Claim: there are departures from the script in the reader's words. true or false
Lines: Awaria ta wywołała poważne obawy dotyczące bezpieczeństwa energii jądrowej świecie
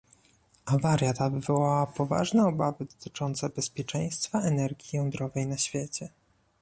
true